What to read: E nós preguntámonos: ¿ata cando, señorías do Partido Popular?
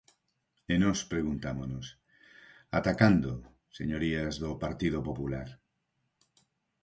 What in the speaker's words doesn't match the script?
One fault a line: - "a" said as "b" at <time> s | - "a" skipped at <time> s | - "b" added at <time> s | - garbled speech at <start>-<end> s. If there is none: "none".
none